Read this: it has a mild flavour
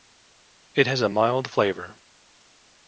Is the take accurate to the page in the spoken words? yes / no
yes